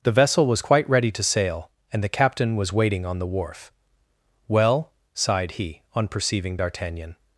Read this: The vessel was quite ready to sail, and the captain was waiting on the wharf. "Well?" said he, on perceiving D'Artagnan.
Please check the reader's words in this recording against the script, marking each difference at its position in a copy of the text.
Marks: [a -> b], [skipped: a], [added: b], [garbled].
The vessel was quite ready to sail, and the captain was waiting on the wharf. "Well?" [said -> sighed] he, on perceiving D'Artagnan.